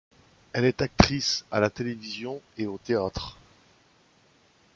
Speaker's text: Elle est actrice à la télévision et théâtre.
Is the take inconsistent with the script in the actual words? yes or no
yes